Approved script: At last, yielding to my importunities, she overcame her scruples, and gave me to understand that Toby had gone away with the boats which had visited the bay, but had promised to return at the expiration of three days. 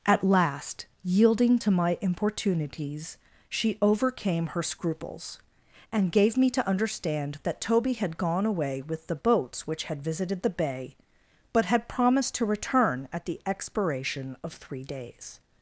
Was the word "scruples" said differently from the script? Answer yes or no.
no